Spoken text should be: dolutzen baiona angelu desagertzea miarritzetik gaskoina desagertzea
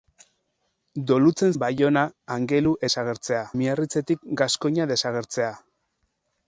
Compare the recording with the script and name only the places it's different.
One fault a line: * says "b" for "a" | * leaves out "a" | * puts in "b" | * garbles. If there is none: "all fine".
all fine